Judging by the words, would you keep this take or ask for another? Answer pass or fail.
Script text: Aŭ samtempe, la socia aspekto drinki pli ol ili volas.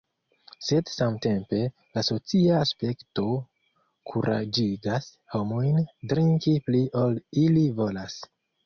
fail